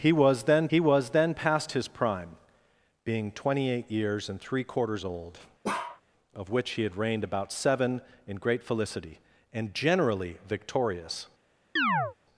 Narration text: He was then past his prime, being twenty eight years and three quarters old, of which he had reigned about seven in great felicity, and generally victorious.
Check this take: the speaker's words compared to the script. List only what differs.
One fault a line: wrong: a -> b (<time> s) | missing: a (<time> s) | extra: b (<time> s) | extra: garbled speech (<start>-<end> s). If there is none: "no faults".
extra: he was then (0.7 s)